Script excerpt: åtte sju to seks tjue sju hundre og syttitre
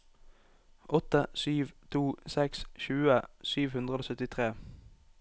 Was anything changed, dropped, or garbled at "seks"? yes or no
no